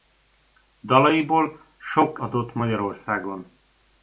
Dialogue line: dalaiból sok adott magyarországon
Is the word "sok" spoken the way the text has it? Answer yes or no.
yes